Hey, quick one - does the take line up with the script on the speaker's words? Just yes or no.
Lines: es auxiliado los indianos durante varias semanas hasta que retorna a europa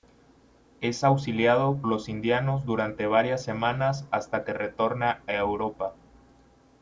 yes